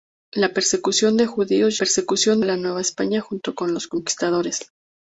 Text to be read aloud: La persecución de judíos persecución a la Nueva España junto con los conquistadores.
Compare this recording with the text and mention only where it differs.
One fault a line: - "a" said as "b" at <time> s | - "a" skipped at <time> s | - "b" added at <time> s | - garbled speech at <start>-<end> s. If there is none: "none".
none